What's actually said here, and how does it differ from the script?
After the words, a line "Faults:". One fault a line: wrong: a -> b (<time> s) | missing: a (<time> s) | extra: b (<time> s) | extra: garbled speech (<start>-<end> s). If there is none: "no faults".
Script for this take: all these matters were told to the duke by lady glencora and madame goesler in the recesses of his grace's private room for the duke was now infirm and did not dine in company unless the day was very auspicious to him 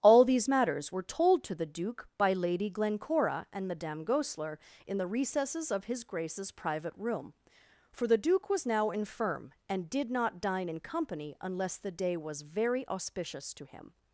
all these matters were told to the duke by lady glencora and madame goesler in the recesses of his grace's private room for the duke was now infirm and did not dine in company unless the day was very auspicious to him
Faults:
no faults